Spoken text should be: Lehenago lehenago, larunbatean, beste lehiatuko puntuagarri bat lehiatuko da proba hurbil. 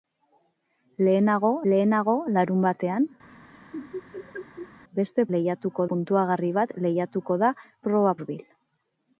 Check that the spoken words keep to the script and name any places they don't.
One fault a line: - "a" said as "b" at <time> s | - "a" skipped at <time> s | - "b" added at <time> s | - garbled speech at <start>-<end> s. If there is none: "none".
none